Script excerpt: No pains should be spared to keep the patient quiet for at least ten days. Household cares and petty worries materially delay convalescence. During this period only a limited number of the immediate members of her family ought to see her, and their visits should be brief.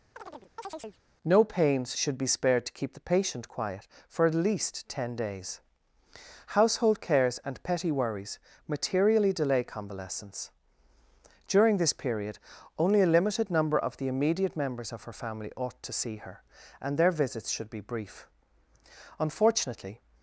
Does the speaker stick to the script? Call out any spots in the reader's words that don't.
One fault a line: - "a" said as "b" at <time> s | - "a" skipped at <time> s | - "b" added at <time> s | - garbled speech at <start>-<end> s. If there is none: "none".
- "Unfortunately" added at 19.2 s